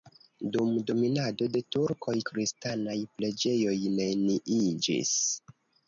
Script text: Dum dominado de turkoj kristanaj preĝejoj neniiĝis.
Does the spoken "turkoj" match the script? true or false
true